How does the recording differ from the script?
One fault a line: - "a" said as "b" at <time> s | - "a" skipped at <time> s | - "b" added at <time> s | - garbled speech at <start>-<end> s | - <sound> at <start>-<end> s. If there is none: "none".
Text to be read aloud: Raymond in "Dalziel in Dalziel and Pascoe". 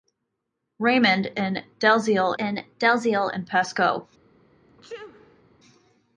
- sneeze at 4.7-5.4 s